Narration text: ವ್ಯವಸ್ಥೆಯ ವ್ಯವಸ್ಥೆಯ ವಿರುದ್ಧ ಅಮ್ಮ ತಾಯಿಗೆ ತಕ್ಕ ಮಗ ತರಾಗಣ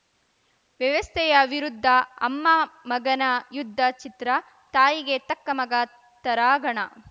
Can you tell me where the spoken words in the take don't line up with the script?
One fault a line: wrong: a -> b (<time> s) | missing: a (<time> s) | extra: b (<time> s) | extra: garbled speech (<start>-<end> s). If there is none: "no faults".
missing: ವ್ಯವಸ್ಥೆಯ (1.3 s)
extra: ಮಗನ ಯುದ್ಧ ಚಿತ್ರ (2.9 s)